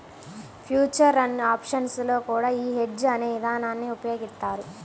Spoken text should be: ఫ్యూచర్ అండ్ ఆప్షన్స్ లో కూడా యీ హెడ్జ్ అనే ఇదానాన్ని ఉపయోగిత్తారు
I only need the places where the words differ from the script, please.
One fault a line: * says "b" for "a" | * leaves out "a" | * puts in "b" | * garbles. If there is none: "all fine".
all fine